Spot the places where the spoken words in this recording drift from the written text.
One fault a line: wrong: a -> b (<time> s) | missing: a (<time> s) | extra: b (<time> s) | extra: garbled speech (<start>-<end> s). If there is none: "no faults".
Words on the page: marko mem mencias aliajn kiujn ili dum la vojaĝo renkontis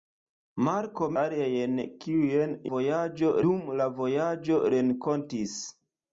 missing: mem mencias (1.1 s)
wrong: ili -> vojaĝo (2.7 s)